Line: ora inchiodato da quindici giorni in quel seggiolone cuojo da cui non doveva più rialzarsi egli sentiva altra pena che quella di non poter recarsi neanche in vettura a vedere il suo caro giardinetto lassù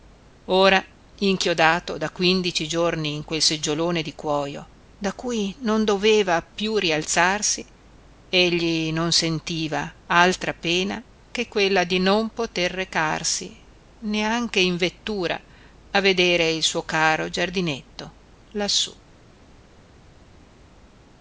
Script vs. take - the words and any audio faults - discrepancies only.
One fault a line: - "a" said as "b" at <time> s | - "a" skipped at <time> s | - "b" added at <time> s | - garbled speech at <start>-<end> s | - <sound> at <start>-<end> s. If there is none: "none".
- "di" added at 4.0 s
- "non" added at 8.9 s